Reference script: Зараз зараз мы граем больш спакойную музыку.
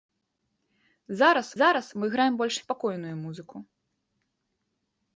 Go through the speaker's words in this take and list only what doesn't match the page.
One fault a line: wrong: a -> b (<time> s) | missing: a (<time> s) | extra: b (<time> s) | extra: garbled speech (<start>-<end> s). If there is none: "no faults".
no faults